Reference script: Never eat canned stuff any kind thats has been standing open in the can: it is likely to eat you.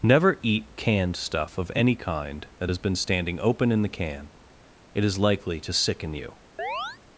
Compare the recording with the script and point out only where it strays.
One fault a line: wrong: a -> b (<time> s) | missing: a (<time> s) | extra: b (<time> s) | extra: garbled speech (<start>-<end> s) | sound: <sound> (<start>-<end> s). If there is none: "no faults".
extra: of (1.6 s)
wrong: thats -> that (2.6 s)
wrong: eat -> sicken (5.7 s)
sound: chirp (6.6-7.0 s)